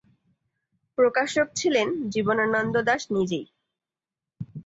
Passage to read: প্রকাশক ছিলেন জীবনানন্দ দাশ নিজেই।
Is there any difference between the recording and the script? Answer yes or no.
no